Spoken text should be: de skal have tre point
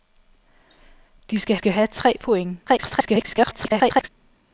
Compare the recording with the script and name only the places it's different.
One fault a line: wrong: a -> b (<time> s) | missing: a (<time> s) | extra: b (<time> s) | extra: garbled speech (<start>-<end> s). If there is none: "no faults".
extra: skal (1.5 s)
extra: garbled speech (2.7-4.1 s)